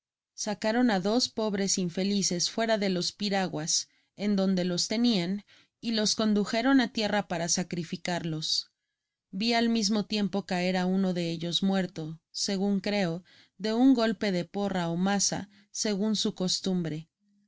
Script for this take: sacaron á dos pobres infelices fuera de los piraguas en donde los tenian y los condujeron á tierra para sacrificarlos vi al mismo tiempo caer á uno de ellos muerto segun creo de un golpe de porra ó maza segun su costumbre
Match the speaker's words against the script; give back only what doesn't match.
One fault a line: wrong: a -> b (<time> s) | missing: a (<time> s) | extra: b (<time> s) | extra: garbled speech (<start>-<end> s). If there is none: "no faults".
no faults